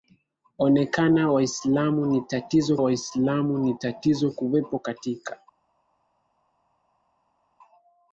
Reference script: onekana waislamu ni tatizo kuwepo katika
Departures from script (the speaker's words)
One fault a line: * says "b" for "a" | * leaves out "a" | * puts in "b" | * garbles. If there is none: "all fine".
* puts in "waislamu ni tatizo"